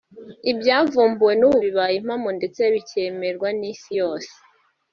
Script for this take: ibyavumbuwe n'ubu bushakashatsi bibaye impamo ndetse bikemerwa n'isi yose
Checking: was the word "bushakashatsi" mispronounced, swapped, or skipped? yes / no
yes